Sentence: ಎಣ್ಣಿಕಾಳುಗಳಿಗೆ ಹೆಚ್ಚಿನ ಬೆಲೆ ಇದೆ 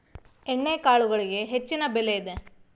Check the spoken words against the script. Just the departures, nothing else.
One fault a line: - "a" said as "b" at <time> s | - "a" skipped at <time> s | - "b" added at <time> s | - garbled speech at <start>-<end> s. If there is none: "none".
none